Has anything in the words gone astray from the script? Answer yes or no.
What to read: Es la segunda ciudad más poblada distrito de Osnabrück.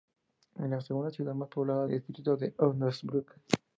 no